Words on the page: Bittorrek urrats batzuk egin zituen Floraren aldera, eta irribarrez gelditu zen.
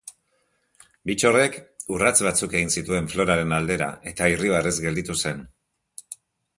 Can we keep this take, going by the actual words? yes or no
yes